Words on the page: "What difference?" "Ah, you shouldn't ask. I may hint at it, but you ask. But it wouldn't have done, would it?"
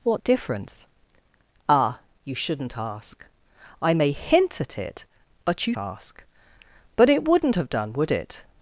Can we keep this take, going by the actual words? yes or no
yes